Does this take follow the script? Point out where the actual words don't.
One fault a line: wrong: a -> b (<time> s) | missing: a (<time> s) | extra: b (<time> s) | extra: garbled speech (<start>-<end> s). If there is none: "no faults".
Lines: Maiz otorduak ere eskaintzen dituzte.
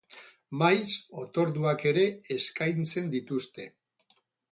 no faults